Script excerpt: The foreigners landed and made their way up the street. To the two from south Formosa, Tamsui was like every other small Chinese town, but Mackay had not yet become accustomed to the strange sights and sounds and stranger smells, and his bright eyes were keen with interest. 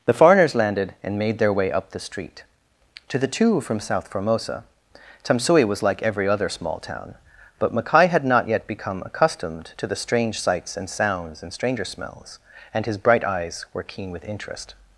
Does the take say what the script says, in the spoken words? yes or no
no